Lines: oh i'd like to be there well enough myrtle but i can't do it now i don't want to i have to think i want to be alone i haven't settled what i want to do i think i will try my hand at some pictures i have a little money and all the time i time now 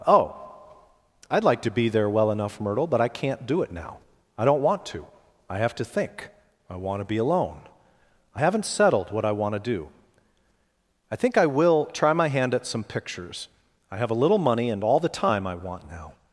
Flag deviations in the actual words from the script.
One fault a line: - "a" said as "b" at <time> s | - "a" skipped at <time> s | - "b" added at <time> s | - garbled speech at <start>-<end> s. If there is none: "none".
- "time" said as "want" at 15.5 s